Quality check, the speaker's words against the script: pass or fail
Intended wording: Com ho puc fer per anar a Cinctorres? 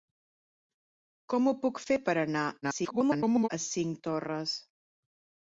fail